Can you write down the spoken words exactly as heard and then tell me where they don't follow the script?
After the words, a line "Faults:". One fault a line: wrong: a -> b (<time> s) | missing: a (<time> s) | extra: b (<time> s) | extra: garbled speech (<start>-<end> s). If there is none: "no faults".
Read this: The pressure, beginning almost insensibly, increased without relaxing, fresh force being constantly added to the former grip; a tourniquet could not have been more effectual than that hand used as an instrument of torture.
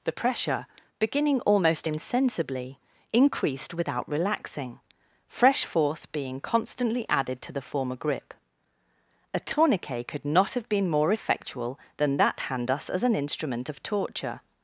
The pressure, beginning almost insensibly, increased without relaxing, fresh force being constantly added to the former grip; a tourniquet could not have been more effectual than that hand us as an instrument of torture.
Faults:
wrong: used -> us (12.7 s)